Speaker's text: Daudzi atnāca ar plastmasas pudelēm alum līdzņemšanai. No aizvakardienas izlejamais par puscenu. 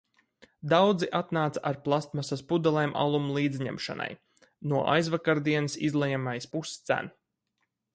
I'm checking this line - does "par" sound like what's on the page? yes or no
no